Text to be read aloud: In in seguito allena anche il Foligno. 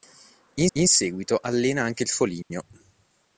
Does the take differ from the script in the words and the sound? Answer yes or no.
yes